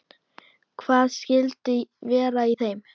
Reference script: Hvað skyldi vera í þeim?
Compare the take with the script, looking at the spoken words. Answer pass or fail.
pass